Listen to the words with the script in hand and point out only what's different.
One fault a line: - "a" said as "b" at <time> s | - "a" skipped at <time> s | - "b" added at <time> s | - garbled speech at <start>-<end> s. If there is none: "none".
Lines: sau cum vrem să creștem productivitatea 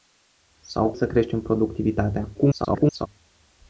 - "cum vrem" skipped at 0.9 s
- garbled speech at 2.3-3.1 s